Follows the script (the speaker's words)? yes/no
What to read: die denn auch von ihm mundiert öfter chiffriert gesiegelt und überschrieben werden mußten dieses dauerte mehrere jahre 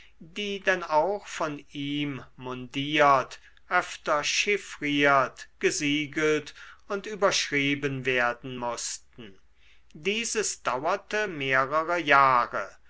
yes